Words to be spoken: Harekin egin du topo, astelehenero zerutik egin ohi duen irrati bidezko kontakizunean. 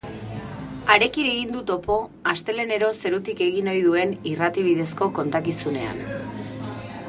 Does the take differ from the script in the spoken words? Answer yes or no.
no